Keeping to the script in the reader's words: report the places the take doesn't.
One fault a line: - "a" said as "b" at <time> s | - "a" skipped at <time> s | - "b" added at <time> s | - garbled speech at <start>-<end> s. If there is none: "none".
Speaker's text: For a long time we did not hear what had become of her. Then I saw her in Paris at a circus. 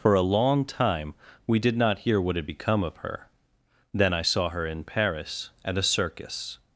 none